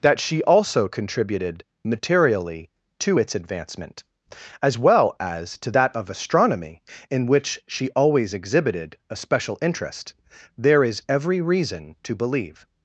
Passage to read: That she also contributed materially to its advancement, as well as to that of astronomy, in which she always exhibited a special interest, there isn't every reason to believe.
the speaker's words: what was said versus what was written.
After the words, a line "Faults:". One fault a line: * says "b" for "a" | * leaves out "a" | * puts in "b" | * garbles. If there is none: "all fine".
That she also contributed materially to its advancement, as well as to that of astronomy, in which she always exhibited a special interest, there is every reason to believe.
Faults:
* says "is" for "isn't"